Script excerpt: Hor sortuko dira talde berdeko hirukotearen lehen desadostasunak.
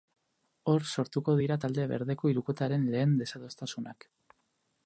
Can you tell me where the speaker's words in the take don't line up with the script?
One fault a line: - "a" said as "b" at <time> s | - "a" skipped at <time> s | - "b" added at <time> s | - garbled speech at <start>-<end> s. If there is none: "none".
none